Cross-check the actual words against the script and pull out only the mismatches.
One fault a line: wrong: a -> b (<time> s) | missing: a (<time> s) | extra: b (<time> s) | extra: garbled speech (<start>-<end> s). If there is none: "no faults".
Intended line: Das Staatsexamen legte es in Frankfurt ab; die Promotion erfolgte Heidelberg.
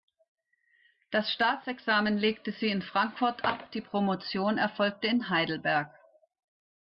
wrong: es -> sie (2.5 s)
extra: in (5.0 s)